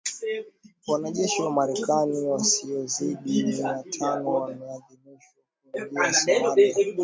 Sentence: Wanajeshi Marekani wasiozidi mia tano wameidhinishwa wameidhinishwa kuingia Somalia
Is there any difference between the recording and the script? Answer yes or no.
yes